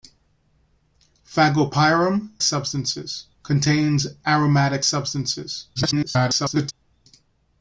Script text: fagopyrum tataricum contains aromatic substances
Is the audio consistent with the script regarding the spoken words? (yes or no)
no